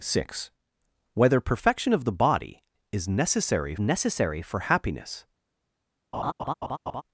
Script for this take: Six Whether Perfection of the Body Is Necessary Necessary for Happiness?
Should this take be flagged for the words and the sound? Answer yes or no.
yes